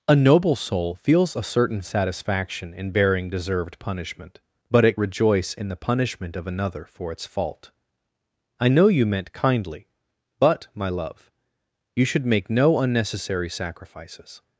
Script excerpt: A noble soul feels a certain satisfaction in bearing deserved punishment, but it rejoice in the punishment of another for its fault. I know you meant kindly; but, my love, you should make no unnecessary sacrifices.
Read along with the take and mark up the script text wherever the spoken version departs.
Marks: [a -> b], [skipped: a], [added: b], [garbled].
A noble soul feels a certain satisfaction in bearing deserved punishment, but it rejoice in the punishment of another for its fault. I know you meant kindly; but, my love, you should make no unnecessary sacrifices.